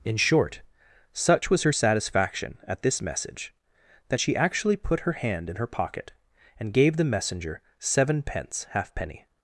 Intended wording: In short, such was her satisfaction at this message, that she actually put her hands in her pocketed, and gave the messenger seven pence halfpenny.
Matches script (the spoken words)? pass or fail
fail